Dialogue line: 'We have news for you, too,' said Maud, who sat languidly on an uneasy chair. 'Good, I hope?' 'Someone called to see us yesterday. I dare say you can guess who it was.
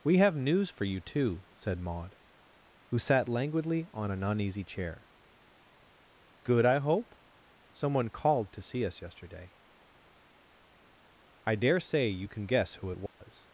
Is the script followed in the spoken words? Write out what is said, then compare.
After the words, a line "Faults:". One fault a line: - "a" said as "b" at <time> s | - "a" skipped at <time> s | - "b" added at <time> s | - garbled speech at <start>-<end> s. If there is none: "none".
'We have news for you, too,' said Maud, who sat languidly on an uneasy chair. 'Good, I hope?' 'Someone called to see us yesterday. I dare say you can guess who it was.
Faults:
none